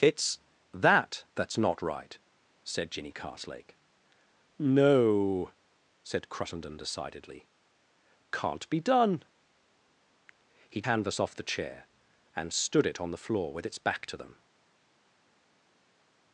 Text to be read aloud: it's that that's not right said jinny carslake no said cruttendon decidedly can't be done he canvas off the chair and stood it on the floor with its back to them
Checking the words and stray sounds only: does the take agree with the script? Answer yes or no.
yes